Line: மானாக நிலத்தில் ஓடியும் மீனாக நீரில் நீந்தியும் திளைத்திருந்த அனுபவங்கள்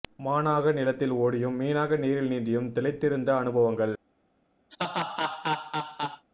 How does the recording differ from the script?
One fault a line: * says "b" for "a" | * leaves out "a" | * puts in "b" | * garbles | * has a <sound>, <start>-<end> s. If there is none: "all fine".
* has a laugh, 4.7-6.3 s